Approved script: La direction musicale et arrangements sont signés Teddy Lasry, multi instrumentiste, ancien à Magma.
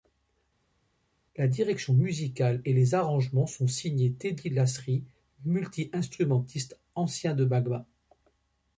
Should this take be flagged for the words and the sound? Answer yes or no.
yes